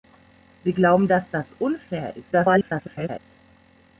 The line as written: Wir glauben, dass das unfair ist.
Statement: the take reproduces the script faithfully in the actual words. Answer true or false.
false